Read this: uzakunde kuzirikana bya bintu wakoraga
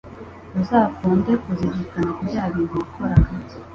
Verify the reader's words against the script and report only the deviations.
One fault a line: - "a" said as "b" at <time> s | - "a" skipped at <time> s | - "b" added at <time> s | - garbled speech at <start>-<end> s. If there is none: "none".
none